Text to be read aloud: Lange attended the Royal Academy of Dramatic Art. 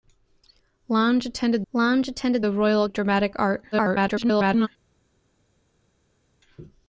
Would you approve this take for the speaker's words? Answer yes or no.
no